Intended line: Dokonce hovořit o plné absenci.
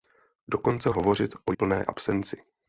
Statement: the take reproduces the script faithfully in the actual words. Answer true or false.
true